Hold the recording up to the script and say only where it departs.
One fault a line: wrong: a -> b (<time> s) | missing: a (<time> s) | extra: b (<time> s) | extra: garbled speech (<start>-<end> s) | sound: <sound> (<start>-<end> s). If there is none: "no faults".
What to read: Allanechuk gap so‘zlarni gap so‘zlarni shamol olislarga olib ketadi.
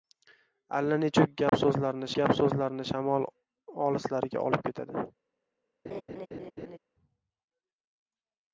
sound: dropout (1.5-1.5 s)
sound: laugh (5.8-6.8 s)